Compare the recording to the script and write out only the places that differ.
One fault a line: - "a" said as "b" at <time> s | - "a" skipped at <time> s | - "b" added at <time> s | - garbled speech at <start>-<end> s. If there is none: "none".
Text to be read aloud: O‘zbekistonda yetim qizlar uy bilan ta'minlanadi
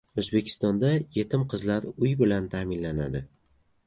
none